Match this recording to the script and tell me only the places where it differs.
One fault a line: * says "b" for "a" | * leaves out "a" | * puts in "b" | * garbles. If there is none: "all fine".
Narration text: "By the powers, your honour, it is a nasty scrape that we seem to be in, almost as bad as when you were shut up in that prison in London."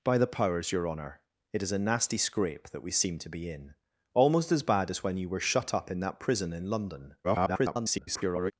* garbles